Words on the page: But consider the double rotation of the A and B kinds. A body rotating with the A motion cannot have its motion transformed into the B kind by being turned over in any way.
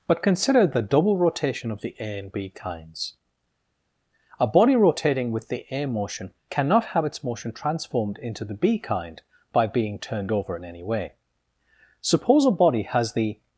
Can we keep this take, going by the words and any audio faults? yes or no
no